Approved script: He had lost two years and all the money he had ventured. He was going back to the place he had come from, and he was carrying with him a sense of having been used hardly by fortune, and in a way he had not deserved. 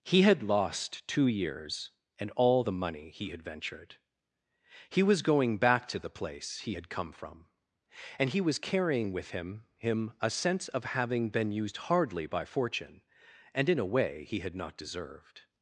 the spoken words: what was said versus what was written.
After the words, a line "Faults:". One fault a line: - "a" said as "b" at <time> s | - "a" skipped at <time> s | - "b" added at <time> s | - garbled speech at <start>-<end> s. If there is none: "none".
He had lost two years and all the money he had ventured. He was going back to the place he had come from, and he was carrying with him him a sense of having been used hardly by fortune, and in a way he had not deserved.
Faults:
- "him" added at 9.8 s